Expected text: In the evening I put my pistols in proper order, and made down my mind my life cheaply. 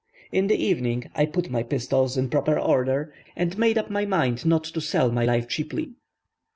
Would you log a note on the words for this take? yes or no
yes